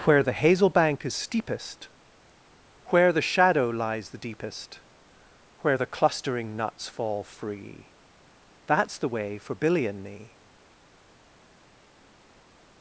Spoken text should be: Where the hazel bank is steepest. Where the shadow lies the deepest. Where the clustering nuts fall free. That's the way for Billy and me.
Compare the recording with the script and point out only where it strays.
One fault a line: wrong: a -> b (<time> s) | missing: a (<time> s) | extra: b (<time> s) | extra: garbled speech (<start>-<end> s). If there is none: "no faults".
no faults